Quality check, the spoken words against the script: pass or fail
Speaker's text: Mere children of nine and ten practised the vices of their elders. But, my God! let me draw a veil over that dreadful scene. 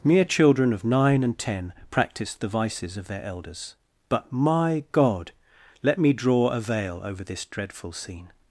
fail